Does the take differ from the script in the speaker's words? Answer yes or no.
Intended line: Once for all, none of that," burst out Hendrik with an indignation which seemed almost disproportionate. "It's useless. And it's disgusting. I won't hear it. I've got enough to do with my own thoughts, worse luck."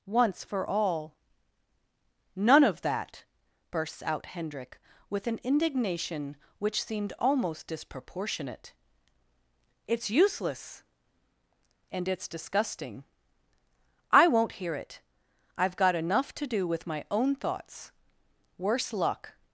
yes